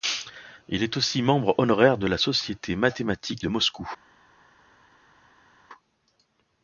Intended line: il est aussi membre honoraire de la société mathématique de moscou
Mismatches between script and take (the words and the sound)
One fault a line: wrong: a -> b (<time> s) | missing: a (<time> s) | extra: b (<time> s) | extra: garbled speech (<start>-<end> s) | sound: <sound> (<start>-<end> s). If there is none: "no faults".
no faults